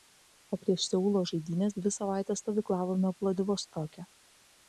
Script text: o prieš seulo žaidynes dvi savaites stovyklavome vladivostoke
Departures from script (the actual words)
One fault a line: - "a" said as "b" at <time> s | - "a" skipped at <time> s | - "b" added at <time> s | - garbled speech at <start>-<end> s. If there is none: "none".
none